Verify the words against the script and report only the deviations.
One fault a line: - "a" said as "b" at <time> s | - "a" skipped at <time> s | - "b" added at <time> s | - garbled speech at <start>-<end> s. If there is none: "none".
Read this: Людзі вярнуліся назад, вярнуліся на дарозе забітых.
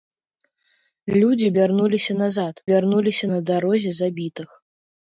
none